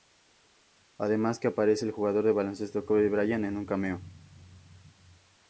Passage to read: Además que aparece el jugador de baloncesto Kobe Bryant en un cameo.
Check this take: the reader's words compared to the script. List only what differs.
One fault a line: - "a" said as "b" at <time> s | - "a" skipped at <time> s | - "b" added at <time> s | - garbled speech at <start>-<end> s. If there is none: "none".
none